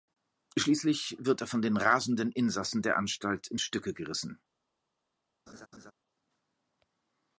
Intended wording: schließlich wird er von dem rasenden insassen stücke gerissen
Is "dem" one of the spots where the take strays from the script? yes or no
yes